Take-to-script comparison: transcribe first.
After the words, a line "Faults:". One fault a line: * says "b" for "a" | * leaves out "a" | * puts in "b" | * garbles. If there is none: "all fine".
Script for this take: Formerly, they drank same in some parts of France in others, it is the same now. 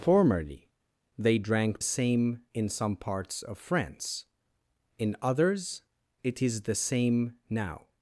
Formerly, they drank same in some parts of France in others, it is the same now.
Faults:
all fine